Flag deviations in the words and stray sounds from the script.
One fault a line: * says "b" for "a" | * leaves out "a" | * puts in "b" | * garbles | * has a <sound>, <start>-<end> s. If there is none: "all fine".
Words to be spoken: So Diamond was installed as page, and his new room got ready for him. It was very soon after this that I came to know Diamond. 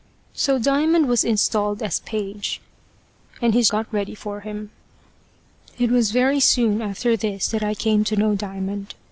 * leaves out "new room"